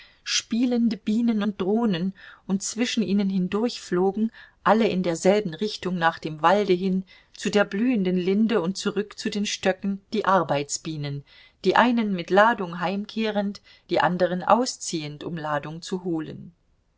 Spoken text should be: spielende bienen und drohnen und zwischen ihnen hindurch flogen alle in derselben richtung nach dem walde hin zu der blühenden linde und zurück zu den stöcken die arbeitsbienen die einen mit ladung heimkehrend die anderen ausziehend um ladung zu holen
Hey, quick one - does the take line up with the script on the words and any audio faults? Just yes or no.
yes